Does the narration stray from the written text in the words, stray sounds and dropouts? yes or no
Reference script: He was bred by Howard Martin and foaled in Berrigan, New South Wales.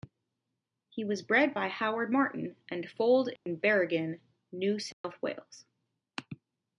yes